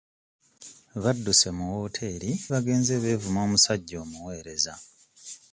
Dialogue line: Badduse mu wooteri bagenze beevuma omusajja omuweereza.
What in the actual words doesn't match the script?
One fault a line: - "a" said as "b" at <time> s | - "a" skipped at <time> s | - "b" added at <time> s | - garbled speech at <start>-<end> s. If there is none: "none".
none